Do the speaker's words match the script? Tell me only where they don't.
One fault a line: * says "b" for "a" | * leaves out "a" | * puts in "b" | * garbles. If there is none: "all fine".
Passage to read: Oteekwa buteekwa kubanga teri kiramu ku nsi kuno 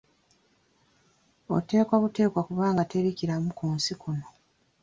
all fine